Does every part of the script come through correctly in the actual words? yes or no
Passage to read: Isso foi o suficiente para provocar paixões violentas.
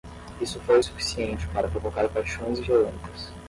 yes